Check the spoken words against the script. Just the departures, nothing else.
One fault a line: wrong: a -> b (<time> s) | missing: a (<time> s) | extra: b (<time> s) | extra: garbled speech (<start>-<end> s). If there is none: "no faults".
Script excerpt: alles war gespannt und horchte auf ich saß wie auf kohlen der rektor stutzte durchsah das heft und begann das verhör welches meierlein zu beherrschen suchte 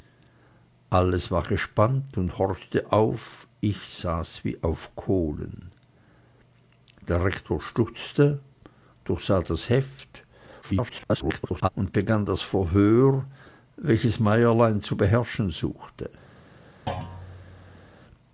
extra: garbled speech (10.6-11.7 s)